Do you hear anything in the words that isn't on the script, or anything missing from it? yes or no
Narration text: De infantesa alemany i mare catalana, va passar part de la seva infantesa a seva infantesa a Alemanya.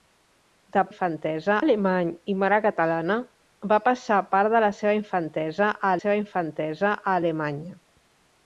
no